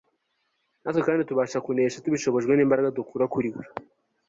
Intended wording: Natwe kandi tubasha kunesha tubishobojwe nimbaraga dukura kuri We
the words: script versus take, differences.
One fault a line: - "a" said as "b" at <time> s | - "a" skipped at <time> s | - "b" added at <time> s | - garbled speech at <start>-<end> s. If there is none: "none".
none